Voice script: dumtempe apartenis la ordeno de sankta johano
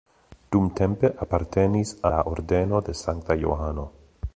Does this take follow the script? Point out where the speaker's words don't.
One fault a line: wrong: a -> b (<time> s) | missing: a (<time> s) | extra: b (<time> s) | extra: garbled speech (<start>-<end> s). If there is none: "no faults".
no faults